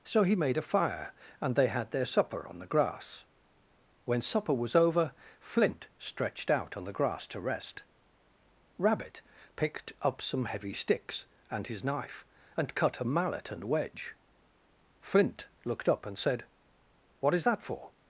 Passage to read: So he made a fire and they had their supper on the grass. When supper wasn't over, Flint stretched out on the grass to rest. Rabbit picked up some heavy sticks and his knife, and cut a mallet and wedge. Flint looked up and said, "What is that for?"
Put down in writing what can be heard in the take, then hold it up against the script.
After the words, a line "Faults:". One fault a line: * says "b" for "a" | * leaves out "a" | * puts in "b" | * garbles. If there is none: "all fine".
So he made a fire and they had their supper on the grass. When supper was over, Flint stretched out on the grass to rest. Rabbit picked up some heavy sticks and his knife, and cut a mallet and wedge. Flint looked up and said, "What is that for?"
Faults:
* says "was" for "wasn't"